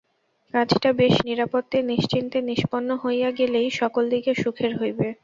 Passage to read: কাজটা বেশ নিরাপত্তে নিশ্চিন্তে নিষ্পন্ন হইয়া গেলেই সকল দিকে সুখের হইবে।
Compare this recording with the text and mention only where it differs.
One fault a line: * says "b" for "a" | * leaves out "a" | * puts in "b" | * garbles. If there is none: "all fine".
all fine